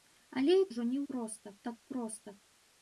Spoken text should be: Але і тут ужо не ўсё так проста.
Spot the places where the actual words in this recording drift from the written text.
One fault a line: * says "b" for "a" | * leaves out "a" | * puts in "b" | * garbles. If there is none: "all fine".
* leaves out "тут"
* says "проста" for "ўсё"